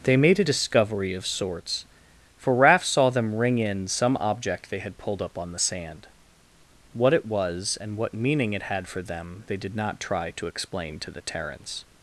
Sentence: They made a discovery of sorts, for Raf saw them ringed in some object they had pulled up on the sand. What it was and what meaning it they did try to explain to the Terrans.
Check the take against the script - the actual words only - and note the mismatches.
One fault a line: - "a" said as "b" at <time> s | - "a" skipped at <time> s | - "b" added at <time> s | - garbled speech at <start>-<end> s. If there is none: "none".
- "ringed" said as "ring" at 3.3 s
- "had for them" added at 8.6 s
- "not" added at 9.8 s